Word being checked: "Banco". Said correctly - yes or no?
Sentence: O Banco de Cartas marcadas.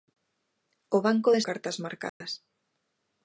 yes